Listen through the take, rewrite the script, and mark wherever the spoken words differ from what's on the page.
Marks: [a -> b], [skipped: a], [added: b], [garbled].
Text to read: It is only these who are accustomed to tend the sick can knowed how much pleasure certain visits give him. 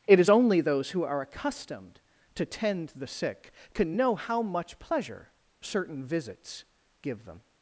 It is only [these -> those] who are accustomed to tend the sick can [knowed -> know] how much pleasure certain visits give [him. -> them]